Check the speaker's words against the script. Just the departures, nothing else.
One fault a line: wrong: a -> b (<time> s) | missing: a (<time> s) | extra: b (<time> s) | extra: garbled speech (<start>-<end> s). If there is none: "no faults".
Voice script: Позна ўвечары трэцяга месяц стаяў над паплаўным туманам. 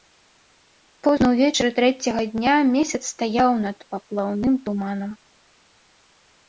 extra: дня (2.4 s)